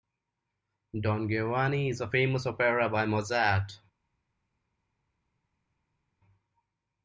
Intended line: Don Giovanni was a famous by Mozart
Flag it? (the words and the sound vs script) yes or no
yes